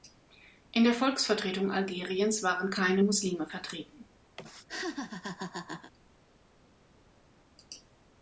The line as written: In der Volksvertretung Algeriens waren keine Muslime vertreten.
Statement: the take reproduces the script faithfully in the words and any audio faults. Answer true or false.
false